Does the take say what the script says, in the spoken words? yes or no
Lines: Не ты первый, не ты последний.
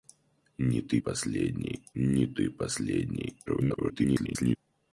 no